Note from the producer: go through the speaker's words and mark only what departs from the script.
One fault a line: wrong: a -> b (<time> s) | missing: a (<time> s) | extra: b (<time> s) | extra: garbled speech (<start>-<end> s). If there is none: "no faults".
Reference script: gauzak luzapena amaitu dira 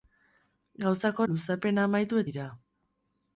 no faults